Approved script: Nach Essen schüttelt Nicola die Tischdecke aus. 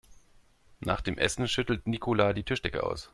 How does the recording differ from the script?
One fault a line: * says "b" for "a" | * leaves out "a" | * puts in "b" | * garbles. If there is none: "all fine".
* puts in "dem"